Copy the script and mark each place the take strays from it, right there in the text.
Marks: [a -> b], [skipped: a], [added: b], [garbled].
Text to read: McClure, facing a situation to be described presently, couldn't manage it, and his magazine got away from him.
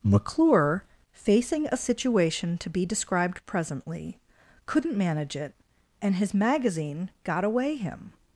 McClure, facing a situation to be described presently, couldn't manage it, and his magazine got away [skipped: from] him.